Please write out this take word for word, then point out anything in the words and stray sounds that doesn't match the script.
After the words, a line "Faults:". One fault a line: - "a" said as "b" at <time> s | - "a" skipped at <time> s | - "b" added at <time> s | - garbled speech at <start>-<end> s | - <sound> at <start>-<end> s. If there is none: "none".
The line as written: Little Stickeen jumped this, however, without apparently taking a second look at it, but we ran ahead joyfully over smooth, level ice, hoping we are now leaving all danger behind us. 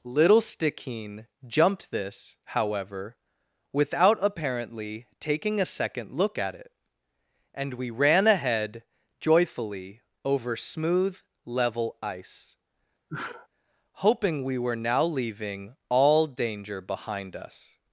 Little Stickeen jumped this, however, without apparently taking a second look at it, and we ran ahead joyfully over smooth, level ice, hoping we were now leaving all danger behind us.
Faults:
- "but" said as "and" at 7.5 s
- sneeze at 13.1-13.5 s
- "are" said as "were" at 14.6 s